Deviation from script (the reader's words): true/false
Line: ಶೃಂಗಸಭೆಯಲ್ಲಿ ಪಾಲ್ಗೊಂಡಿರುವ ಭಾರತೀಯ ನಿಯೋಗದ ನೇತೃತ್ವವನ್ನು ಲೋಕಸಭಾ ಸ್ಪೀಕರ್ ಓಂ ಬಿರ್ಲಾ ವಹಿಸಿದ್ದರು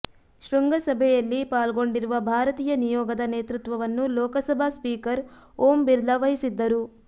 false